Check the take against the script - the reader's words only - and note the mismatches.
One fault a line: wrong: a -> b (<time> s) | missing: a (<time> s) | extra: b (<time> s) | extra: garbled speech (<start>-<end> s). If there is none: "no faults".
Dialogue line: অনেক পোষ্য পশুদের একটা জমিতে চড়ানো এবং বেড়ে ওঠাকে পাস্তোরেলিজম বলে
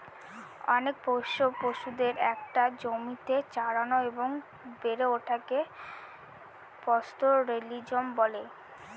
no faults